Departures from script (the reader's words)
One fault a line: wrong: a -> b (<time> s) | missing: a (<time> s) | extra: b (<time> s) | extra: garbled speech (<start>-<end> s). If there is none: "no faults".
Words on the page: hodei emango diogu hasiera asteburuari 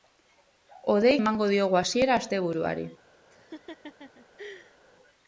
no faults